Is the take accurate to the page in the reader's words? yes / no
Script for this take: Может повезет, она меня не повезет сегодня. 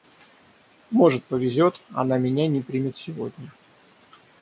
no